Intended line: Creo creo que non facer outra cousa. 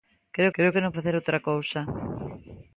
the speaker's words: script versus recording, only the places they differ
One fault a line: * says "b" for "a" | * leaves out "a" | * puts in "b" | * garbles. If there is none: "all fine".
all fine